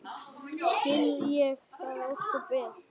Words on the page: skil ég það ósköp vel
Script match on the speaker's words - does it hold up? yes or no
yes